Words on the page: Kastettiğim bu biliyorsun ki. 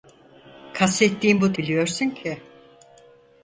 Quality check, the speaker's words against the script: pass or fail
pass